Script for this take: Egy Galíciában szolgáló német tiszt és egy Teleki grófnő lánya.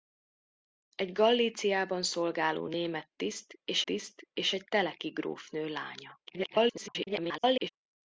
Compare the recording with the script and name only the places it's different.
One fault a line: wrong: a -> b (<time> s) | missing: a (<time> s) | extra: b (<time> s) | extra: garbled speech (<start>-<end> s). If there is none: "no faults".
extra: tiszt és (3.8 s)
extra: garbled speech (6.3-7.7 s)